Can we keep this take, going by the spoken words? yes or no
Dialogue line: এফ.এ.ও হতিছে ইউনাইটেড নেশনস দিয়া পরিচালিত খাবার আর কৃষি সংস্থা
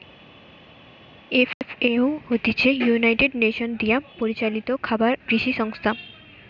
no